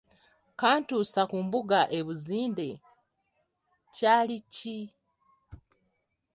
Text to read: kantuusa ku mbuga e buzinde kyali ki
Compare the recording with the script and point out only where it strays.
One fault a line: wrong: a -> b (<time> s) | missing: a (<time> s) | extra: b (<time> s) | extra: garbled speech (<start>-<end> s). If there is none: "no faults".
no faults